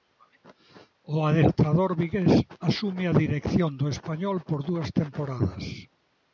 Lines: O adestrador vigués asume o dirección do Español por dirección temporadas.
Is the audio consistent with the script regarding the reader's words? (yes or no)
no